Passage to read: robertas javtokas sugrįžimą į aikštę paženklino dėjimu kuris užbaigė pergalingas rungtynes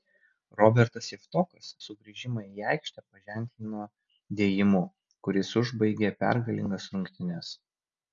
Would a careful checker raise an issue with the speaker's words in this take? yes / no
no